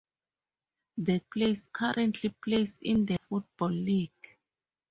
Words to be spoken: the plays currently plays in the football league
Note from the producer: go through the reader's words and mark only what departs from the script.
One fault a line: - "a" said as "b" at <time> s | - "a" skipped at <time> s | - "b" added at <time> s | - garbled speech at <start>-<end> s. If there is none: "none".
none